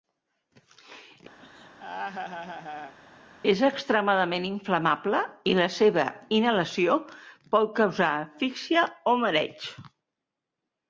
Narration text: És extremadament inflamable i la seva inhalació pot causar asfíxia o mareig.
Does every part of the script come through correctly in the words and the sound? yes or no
no